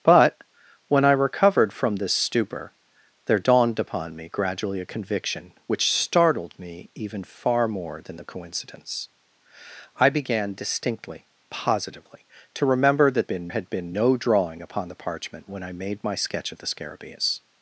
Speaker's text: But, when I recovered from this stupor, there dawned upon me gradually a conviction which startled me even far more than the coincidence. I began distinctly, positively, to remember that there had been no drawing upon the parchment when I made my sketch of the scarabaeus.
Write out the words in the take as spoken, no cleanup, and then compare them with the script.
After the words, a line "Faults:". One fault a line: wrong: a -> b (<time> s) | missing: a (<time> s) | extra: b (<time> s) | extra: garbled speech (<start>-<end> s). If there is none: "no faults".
But, when I recovered from this stupor, there dawned upon me gradually a conviction which startled me even far more than the coincidence. I began distinctly, positively, to remember that been had been no drawing upon the parchment when I made my sketch of the scarabaeus.
Faults:
wrong: there -> been (13.3 s)